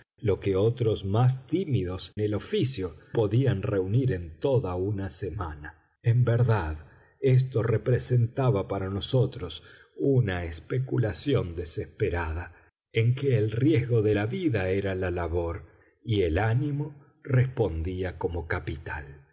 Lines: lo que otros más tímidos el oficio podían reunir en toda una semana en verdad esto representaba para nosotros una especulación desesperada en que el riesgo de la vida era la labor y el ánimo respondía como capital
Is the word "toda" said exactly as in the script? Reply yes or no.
yes